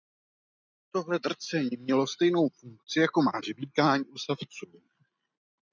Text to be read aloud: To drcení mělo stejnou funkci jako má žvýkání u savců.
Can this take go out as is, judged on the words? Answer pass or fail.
fail